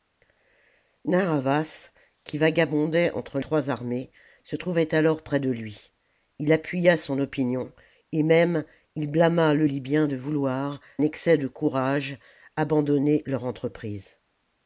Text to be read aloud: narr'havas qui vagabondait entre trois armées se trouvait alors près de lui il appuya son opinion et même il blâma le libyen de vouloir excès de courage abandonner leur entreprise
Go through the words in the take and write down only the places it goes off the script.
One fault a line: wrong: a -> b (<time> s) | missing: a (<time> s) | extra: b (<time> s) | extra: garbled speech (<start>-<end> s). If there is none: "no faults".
no faults